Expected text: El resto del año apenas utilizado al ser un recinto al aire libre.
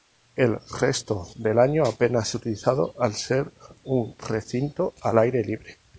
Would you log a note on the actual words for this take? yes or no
no